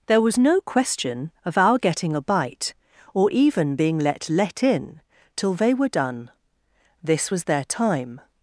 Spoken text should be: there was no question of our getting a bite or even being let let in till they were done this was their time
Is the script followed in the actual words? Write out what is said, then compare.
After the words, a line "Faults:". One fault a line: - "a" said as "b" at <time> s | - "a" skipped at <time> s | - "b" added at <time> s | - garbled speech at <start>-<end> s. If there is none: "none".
there was no question of our getting a bite or even being let let in till they were done this was their time
Faults:
none